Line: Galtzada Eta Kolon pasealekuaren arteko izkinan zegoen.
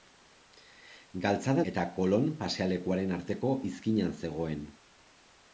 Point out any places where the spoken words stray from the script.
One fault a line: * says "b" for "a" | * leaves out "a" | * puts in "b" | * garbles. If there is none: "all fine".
all fine